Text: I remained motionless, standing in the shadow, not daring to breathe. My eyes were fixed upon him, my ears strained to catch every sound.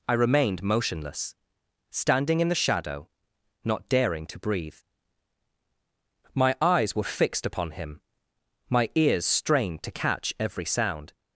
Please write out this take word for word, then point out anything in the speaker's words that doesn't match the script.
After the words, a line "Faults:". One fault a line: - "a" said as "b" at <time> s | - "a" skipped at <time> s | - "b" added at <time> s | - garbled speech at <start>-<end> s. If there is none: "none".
I remained motionless, standing in the shadow, not daring to breathe. My eyes were fixed upon him, my ears strained to catch every sound.
Faults:
none